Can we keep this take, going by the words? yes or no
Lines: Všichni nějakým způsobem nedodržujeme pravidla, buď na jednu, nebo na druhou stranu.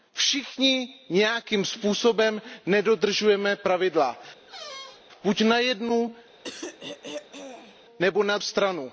no